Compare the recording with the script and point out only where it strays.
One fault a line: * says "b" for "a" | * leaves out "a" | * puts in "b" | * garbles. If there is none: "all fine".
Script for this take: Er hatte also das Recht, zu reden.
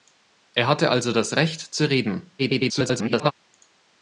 * garbles